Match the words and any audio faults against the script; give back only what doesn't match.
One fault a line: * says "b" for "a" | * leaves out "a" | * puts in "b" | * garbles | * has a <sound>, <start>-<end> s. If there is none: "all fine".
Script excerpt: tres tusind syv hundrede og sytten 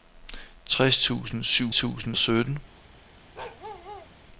* says "tusind" for "hundrede"
* has a bark, 3.3-4.1 s